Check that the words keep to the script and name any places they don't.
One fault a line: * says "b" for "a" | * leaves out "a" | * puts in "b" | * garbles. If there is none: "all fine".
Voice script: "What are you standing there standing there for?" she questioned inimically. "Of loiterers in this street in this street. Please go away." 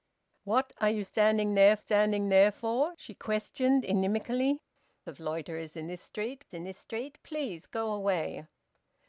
all fine